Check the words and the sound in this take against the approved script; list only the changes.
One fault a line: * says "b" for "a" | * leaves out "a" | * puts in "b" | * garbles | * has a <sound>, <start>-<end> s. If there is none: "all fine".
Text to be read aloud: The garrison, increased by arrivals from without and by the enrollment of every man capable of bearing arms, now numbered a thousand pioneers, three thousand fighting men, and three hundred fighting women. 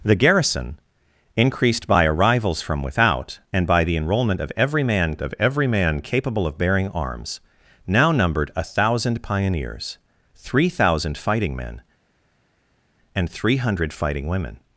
* puts in "of every man"